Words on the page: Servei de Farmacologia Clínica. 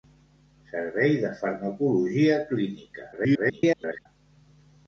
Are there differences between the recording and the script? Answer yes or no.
yes